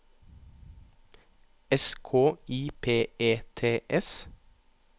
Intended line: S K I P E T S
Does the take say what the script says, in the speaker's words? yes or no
yes